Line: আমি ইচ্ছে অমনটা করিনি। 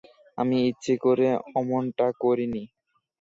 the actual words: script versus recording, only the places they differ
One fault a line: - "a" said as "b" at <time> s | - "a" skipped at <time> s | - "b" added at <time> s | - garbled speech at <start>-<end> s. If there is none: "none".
- "করে" added at 1.0 s